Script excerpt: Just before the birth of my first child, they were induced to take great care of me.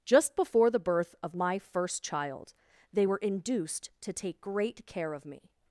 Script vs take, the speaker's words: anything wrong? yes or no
no